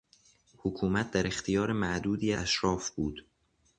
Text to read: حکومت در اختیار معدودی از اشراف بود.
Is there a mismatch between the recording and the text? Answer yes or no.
yes